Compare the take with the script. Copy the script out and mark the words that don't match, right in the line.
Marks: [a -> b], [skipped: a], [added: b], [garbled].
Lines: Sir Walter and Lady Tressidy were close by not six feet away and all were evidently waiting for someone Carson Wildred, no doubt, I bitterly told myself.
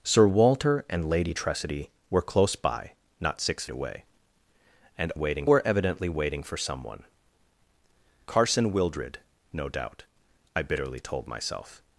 Sir Walter and Lady Tressidy were close by not six [skipped: feet] away and [all -> waiting] were evidently waiting for someone Carson Wildred, no doubt, I bitterly told myself.